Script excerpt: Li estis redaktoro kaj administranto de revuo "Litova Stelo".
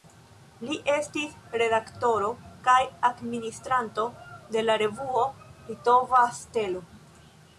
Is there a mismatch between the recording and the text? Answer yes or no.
yes